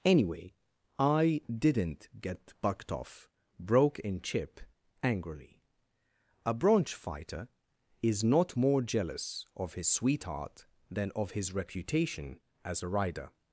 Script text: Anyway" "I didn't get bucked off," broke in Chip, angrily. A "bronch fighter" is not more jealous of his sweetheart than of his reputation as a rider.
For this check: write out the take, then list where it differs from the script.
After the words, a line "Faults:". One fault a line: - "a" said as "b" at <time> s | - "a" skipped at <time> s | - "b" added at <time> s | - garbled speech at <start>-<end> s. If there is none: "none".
Anyway" "I didn't get bucked off," broke in Chip, angrily. A "bronch fighter" is not more jealous of his sweetheart than of his reputation as a rider.
Faults:
none